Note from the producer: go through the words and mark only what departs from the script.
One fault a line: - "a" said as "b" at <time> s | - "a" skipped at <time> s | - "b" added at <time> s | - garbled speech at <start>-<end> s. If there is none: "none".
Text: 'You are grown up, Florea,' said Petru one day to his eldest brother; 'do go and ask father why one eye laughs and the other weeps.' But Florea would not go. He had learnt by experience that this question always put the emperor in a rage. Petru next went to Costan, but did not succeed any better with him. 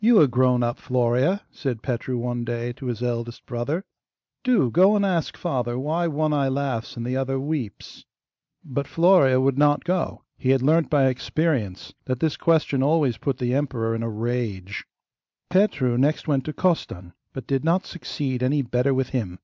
none